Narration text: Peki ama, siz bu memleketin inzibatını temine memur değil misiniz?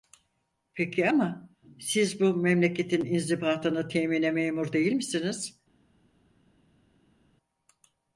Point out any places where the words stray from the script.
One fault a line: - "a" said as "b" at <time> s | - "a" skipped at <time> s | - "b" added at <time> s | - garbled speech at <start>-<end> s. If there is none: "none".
none